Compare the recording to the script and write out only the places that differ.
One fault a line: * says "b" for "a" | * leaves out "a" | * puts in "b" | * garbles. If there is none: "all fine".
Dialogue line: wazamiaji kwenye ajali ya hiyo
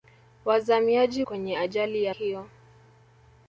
all fine